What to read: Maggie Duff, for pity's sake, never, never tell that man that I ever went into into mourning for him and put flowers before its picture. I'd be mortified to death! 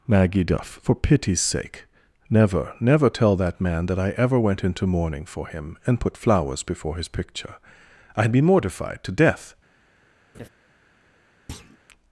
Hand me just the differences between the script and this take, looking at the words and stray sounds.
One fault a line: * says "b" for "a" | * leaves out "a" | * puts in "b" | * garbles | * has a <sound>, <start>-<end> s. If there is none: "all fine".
* leaves out "into"
* says "his" for "its"
* has a laugh, 10.3-10.5 s
* has a thud, 11.5-11.8 s